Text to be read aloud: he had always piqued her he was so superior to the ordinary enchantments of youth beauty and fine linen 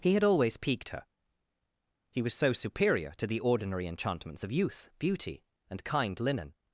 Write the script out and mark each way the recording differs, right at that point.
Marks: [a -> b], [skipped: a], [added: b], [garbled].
he had always piqued her he was so superior to the ordinary enchantments of youth beauty and [fine -> kind] linen